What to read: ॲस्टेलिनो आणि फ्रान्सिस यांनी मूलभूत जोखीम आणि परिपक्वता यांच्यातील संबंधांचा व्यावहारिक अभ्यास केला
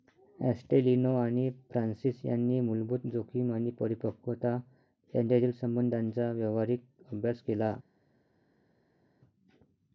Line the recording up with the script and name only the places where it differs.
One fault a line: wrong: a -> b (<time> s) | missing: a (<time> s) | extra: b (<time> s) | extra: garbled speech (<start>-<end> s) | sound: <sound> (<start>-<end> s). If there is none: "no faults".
no faults